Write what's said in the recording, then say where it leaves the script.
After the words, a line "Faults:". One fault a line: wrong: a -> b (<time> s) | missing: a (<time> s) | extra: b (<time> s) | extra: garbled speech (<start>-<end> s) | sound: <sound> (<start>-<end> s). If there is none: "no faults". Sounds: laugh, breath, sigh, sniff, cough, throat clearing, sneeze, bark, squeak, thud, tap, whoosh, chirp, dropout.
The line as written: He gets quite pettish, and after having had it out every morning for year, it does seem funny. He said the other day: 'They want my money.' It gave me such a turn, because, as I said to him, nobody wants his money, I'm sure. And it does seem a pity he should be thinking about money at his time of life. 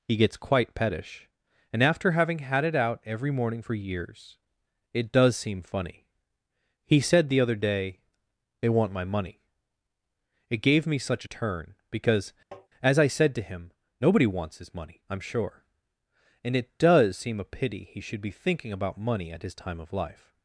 He gets quite pettish, and after having had it out every morning for years, it does seem funny. He said the other day: 'They want my money.' It gave me such a turn, because, as I said to him, nobody wants his money, I'm sure. And it does seem a pity he should be thinking about money at his time of life.
Faults:
wrong: year -> years (3.7 s)
sound: tap (12.5-12.7 s)